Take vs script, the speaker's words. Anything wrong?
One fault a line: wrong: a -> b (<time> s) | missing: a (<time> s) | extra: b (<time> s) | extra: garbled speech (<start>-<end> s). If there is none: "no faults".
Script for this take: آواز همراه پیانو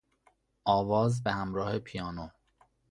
extra: به (1.2 s)